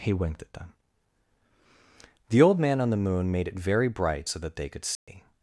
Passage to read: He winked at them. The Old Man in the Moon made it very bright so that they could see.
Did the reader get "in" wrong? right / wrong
wrong